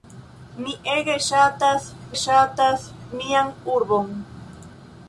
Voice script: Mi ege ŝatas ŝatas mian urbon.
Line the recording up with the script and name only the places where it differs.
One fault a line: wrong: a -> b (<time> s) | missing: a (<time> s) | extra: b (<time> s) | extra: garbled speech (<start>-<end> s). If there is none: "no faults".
no faults